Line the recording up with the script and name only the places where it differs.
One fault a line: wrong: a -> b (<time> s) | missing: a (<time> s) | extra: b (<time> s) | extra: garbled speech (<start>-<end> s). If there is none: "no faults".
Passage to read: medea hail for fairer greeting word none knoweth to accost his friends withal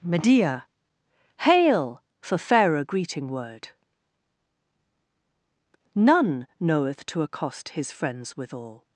no faults